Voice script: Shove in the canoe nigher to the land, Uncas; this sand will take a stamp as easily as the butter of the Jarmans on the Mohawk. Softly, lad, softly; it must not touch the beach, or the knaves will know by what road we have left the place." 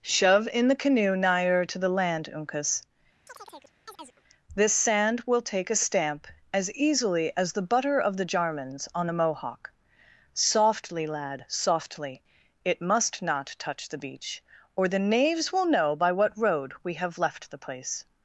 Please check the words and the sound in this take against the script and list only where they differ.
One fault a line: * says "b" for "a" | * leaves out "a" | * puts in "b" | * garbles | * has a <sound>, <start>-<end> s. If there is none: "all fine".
* has a chirp, 3.3-4.2 s